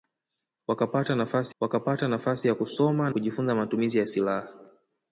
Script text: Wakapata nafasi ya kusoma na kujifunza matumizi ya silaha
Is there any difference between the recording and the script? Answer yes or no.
yes